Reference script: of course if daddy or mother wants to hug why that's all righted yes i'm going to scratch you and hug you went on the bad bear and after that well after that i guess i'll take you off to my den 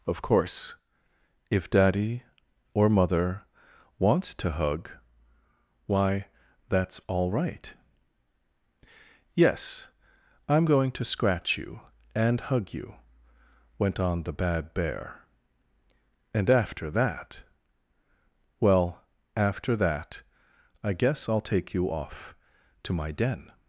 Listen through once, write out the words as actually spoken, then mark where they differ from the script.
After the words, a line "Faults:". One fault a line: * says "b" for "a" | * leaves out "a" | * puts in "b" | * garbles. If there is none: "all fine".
of course if daddy or mother wants to hug why that's all right yes i'm going to scratch you and hug you went on the bad bear and after that well after that i guess i'll take you off to my den
Faults:
* says "right" for "righted"